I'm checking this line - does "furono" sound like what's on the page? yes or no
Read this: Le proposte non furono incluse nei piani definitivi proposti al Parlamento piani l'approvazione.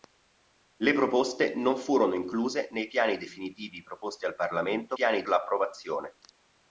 yes